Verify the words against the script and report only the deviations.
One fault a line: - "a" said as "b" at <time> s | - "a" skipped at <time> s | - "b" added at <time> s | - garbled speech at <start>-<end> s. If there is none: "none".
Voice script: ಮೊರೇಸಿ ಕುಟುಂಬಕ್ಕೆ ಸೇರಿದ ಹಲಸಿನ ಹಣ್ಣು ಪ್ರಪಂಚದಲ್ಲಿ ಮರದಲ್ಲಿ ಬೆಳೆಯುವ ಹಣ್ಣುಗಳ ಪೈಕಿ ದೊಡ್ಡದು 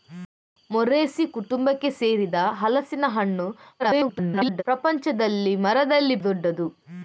- garbled speech at 3.8-4.6 s
- "ಬೆಳೆಯುವ ಹಣ್ಣುಗಳ ಪೈಕಿ" skipped at 6.2 s